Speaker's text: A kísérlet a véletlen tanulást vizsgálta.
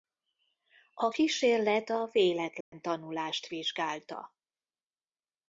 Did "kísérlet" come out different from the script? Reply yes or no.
no